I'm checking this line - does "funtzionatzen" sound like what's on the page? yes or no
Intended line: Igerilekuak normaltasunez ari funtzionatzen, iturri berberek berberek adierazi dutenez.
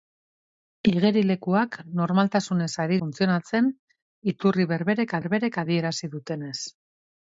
yes